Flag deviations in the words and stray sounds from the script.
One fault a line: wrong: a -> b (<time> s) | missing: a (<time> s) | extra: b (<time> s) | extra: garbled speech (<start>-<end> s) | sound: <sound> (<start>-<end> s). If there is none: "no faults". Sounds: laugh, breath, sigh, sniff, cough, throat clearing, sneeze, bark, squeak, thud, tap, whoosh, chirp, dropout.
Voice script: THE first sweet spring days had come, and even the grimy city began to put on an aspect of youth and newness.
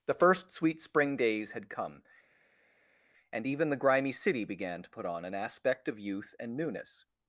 no faults